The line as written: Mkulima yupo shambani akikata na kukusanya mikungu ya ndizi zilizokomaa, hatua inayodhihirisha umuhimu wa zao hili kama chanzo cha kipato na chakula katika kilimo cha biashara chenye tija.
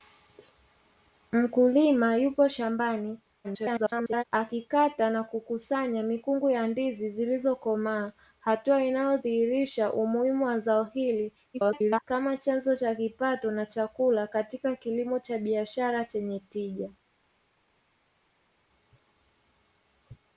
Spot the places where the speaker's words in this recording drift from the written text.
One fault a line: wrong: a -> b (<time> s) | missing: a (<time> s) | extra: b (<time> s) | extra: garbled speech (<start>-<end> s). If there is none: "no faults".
extra: garbled speech (3.4-4.2 s)
extra: garbled speech (11.5-12.0 s)